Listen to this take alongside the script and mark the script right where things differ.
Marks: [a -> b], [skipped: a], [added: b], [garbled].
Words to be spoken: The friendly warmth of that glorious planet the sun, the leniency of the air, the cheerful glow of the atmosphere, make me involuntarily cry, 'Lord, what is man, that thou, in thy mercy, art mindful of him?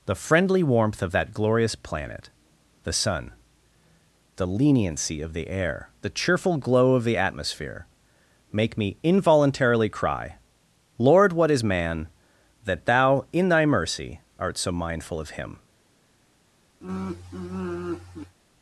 The friendly warmth of that glorious planet the sun, the leniency of the air, the cheerful glow of the atmosphere, make me involuntarily cry, 'Lord, what is man, that thou, in thy mercy, art [added: so] mindful of him?